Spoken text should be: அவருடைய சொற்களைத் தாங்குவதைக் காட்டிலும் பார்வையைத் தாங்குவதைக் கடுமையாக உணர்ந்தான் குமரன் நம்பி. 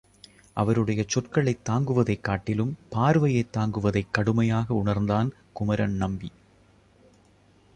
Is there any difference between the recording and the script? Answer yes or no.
no